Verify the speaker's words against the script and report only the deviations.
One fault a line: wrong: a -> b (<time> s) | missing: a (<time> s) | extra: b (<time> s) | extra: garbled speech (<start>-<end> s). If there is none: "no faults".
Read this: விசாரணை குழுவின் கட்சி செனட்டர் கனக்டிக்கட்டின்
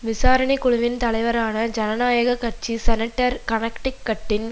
extra: தலைவரான ஜனநாயக (1.0 s)